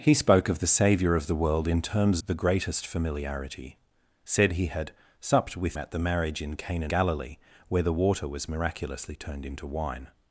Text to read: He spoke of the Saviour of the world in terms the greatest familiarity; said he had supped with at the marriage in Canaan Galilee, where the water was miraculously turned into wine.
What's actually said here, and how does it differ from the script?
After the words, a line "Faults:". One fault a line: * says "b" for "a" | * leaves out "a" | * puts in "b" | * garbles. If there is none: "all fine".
He spoke of the Saviour of the world in terms the greatest familiarity; said he had supped with at the marriage in Canaan Galilee, where the water was miraculously turned into wine.
Faults:
all fine